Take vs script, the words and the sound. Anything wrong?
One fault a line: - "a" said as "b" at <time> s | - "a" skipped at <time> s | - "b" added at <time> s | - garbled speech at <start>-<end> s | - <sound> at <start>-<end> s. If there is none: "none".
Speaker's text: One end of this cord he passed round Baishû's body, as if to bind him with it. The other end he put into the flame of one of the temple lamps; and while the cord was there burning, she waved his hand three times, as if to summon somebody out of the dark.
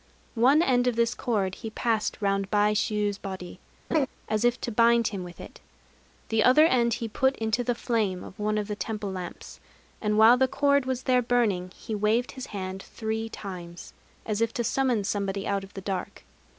- laugh at 3.9-4.1 s
- "she" said as "he" at 11.8 s